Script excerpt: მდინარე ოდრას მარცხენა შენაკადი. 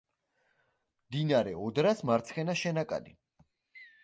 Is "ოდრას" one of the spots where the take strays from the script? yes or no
no